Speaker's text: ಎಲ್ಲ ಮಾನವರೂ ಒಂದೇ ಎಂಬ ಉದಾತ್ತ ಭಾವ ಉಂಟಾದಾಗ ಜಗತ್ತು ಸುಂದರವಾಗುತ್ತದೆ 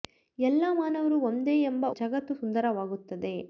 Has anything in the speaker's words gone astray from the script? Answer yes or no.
yes